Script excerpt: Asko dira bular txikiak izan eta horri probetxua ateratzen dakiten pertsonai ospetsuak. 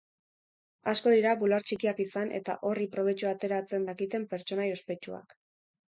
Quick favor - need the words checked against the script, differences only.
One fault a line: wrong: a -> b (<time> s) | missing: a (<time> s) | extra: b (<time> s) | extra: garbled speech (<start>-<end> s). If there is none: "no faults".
no faults